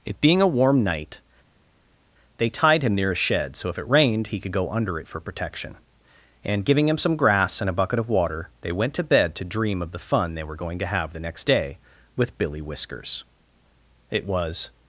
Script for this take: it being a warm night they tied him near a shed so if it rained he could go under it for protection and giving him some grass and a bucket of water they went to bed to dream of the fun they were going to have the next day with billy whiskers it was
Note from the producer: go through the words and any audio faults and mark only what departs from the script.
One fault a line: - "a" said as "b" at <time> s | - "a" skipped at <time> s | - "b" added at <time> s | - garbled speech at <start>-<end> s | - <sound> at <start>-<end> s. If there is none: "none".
none